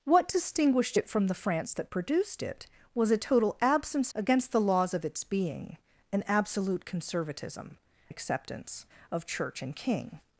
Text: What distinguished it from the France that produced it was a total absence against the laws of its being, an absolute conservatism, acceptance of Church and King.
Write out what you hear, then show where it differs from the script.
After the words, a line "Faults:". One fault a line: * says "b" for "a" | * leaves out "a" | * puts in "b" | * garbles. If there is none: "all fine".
What distinguished it from the France that produced it was a total absence against the laws of its being, an absolute conservatism, acceptance of Church and King.
Faults:
all fine